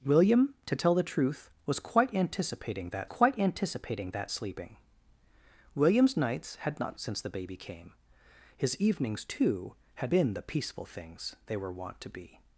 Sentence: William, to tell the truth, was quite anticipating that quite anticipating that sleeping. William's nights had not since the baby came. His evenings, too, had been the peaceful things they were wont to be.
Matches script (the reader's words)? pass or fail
pass